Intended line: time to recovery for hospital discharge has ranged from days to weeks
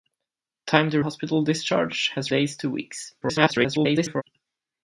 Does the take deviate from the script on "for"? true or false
true